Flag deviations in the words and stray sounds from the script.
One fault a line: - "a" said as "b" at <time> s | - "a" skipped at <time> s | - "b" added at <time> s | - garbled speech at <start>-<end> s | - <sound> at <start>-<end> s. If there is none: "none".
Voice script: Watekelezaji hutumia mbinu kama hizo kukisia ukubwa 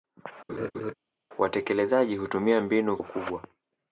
- laugh at 0.5-0.9 s
- "kama hizo kukisia" skipped at 3.0 s